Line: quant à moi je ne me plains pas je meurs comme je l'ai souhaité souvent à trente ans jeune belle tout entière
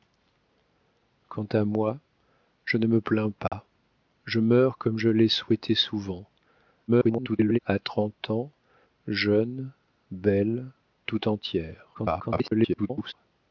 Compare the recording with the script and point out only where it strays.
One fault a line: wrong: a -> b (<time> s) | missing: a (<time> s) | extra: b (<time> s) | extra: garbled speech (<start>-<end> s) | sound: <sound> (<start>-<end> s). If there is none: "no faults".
sound: dropout (3.5-3.5 s)
extra: garbled speech (6.9-7.6 s)
extra: garbled speech (11.9-13.1 s)